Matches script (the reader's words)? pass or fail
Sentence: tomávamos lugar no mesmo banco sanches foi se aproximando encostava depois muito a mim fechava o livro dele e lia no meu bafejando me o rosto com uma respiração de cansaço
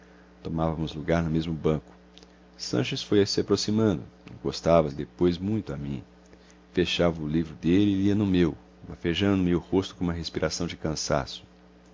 pass